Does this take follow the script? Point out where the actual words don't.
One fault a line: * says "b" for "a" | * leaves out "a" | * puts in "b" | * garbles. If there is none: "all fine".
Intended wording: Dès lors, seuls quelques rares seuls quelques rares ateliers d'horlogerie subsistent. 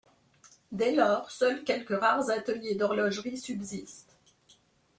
* leaves out "seuls quelques rares"